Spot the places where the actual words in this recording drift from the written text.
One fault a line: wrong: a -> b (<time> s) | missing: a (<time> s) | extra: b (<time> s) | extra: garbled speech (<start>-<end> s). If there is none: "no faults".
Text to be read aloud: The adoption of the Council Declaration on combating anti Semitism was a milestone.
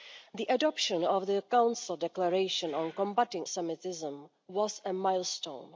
missing: anti (3.5 s)